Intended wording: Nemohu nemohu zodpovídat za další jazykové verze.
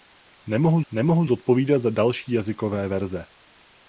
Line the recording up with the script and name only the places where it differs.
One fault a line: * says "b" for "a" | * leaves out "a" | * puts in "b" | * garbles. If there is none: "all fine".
all fine